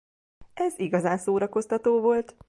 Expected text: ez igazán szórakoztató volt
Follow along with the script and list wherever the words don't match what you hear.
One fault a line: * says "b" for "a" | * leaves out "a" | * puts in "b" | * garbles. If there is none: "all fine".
all fine